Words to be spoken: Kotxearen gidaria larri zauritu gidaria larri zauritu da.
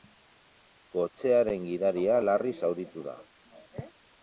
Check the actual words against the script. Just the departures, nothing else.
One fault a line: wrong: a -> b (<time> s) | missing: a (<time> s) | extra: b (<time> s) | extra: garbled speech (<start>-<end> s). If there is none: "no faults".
missing: gidaria larri zauritu (3.1 s)